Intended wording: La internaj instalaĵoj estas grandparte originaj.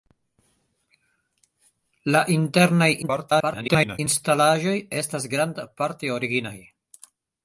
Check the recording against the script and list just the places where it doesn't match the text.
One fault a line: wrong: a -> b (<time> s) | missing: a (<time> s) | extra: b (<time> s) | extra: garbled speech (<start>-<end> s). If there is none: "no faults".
extra: garbled speech (3.0-4.0 s)